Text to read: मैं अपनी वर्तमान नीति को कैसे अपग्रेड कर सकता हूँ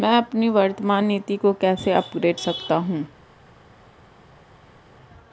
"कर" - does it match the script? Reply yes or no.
no